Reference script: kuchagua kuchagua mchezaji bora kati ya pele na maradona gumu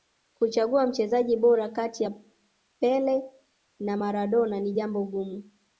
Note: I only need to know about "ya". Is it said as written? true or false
true